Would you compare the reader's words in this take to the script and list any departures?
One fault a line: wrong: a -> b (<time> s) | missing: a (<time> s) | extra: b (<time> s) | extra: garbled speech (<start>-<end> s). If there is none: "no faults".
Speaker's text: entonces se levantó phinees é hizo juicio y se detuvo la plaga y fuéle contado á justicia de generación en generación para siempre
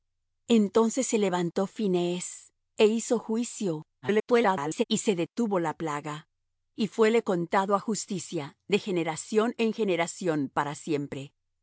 extra: garbled speech (4.0-4.8 s)